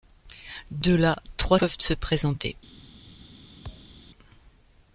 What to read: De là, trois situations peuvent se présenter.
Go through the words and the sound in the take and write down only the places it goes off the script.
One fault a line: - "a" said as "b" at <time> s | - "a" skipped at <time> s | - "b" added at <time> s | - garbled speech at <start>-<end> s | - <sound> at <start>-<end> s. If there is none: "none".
- "situations" skipped at 1.6 s
- thud at 3.6-4.0 s